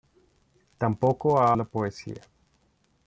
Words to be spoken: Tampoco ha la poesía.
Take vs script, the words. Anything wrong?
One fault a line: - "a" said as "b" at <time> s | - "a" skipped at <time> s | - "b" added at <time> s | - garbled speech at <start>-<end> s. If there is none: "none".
none